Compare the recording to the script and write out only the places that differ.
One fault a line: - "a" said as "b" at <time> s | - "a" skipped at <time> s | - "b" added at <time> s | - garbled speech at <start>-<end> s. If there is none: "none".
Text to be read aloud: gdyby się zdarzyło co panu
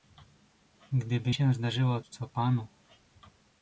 none